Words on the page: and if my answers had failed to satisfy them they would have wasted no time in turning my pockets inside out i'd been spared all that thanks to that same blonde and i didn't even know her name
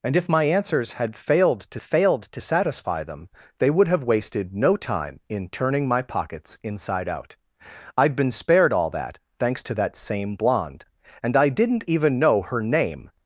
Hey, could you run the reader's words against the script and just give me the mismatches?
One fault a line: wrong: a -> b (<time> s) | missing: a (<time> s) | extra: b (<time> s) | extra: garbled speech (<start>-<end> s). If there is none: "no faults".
extra: failed to (1.8 s)